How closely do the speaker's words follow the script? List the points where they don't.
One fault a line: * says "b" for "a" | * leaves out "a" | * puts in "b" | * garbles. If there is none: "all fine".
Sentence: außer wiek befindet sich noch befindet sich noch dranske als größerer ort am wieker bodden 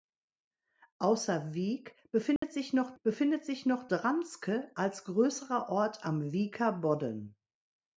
all fine